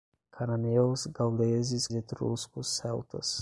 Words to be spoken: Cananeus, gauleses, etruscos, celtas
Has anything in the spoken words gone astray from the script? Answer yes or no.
no